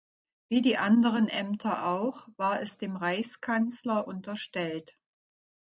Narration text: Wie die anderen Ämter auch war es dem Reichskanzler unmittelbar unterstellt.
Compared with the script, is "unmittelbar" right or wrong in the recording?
wrong